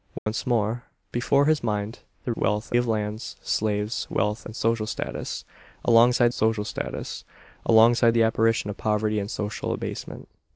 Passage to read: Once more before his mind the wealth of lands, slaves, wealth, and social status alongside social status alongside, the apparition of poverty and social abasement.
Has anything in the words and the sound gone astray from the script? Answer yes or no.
yes